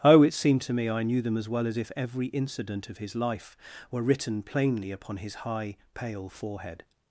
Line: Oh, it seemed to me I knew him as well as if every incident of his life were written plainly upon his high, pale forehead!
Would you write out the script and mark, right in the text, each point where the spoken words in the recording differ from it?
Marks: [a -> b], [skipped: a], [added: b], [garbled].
Oh, it seemed to me I knew [him -> them] as well as if every incident of his life were written plainly upon his high, pale forehead!